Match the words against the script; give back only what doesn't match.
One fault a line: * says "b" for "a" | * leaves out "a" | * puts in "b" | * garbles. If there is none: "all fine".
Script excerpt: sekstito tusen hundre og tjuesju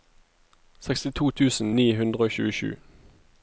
* puts in "ni"